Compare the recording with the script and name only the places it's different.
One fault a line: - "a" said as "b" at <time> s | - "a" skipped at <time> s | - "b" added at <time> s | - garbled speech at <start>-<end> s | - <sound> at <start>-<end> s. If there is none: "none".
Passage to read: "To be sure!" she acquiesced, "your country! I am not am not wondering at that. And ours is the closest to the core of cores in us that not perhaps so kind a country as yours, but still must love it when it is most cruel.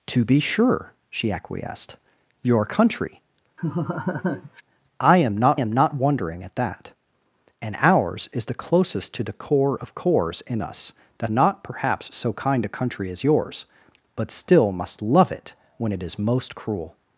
- laugh at 3.6-4.6 s